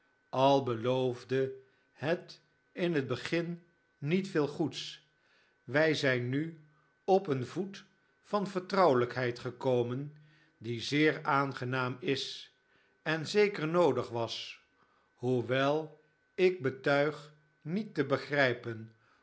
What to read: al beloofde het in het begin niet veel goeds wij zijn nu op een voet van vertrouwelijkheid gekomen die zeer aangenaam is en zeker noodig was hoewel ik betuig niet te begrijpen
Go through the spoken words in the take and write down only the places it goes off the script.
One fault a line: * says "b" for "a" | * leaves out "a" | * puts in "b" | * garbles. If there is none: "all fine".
all fine